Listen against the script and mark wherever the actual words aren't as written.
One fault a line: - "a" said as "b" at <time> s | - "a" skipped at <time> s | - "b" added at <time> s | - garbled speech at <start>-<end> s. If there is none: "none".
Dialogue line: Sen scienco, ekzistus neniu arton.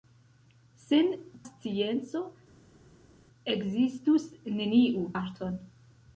none